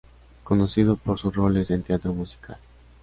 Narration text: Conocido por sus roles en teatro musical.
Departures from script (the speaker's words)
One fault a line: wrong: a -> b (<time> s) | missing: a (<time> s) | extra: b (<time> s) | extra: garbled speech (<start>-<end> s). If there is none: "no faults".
no faults